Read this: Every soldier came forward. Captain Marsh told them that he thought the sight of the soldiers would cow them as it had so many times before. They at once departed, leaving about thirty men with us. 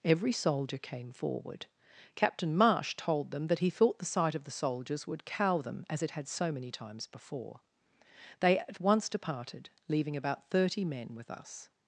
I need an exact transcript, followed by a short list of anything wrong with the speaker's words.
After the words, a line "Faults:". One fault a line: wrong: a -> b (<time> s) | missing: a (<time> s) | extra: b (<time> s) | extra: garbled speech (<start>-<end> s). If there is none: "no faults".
Every soldier came forward. Captain Marsh told them that he thought the sight of the soldiers would cow them as it had so many times before. They at once departed, leaving about thirty men with us.
Faults:
no faults